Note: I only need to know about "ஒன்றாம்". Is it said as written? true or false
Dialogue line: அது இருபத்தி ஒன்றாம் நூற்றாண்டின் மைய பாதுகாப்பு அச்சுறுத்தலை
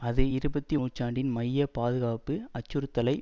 false